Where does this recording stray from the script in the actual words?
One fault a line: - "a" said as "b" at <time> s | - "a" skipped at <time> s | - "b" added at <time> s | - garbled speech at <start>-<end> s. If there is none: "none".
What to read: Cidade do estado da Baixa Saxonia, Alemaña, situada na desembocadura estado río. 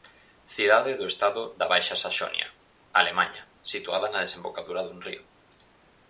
- "estado" said as "dun" at 4.8 s